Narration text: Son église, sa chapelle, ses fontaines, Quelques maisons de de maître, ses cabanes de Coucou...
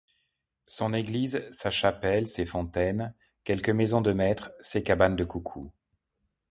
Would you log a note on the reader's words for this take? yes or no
yes